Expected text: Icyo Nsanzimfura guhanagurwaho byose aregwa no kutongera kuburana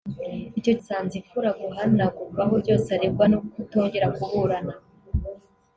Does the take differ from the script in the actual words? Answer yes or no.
no